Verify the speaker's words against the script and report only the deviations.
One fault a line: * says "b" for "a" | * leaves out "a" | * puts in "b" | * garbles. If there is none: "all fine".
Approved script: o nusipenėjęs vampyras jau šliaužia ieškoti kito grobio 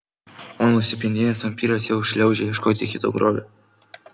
all fine